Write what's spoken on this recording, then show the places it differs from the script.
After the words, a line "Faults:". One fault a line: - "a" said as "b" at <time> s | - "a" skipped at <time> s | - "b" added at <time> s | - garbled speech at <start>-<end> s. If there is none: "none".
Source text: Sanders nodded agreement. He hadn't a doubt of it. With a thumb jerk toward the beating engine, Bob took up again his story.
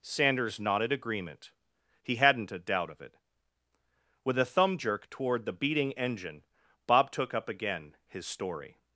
Sanders nodded agreement. He hadn't a doubt of it. With a thumb jerk toward the beating engine, Bob took up again his story.
Faults:
none